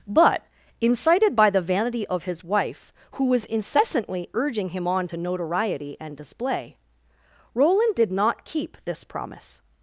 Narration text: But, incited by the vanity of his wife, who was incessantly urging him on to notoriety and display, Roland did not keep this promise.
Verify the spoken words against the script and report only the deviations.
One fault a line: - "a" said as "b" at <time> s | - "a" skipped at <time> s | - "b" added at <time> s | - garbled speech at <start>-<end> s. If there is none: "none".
none